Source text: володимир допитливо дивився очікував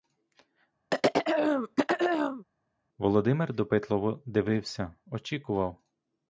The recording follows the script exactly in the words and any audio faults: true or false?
false